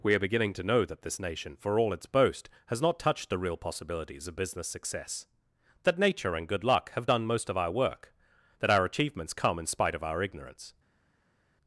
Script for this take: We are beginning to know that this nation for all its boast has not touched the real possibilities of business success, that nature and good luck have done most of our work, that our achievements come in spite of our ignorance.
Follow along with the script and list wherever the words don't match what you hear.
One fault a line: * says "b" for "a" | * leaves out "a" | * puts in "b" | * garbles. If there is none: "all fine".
all fine